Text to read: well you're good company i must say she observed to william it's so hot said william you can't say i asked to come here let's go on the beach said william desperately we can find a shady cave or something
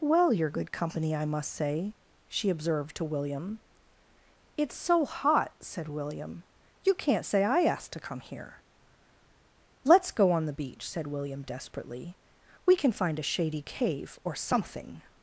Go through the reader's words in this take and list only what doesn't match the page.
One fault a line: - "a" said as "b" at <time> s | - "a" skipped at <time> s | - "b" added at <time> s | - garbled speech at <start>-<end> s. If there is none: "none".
none